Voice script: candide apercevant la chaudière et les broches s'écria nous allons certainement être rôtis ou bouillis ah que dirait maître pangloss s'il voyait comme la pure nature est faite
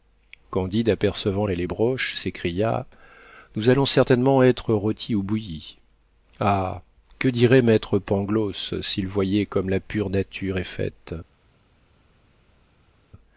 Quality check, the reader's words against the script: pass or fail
fail